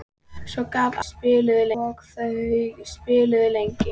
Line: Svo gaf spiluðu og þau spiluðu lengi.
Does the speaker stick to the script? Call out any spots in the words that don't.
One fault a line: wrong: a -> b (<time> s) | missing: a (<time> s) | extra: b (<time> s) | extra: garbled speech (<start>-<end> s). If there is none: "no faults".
no faults